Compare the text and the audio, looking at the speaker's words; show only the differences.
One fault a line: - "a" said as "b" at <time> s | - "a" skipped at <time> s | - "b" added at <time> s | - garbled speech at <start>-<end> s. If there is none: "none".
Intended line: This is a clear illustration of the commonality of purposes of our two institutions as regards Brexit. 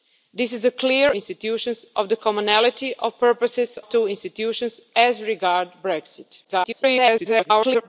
- "illustration" said as "institutions" at 1.1 s
- "of our" skipped at 3.8 s
- garbled speech at 6.4-7.9 s